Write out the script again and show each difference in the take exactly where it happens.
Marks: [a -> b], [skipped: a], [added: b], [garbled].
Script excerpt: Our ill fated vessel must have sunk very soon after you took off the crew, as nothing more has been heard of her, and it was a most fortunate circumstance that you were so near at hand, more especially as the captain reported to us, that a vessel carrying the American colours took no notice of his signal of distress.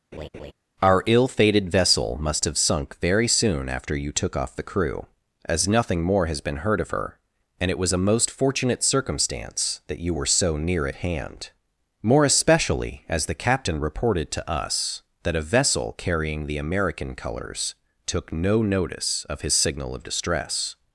Our ill fated vessel must have sunk very soon after you took off the crew, as nothing more has been heard of her, and it was a most fortunate circumstance that you were so near at hand, more especially as the captain reported to us, that a vessel carrying the American colours took no notice of his signal of distress.